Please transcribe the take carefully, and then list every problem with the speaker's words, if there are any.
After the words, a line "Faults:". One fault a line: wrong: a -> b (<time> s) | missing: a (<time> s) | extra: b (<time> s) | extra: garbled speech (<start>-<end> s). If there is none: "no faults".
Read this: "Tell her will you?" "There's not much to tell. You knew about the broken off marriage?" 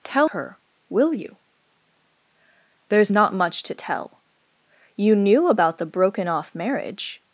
"Tell her will you?" "There's not much to tell. You knew about the broken off marriage?"
Faults:
no faults